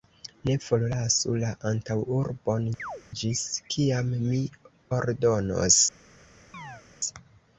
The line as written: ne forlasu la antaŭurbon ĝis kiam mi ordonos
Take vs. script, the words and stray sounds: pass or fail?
fail